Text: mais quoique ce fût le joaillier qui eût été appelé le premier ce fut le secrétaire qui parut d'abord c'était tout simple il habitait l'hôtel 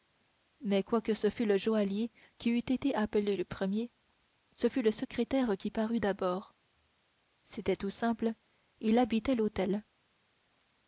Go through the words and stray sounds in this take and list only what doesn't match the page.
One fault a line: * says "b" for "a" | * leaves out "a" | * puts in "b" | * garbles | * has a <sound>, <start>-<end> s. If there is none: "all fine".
all fine